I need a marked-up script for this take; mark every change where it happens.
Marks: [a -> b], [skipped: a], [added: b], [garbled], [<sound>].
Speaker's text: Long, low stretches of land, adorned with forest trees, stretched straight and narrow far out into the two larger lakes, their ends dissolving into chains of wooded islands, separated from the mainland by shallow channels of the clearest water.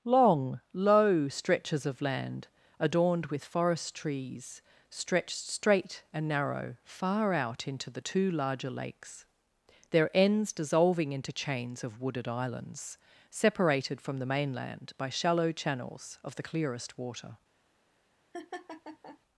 Long, low stretches of land, adorned with forest trees, stretched straight and narrow far out into the two larger lakes, their ends dissolving into chains of wooded islands, separated from the mainland by shallow channels of the clearest water. [laugh]